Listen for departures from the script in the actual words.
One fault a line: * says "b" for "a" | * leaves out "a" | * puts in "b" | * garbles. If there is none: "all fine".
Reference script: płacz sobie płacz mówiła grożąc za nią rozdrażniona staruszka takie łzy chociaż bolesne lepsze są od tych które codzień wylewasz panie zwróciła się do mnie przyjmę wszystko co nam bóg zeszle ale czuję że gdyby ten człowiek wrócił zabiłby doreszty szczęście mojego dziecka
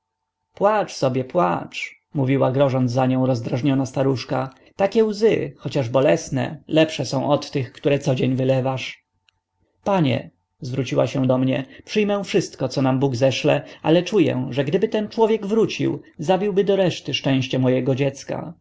all fine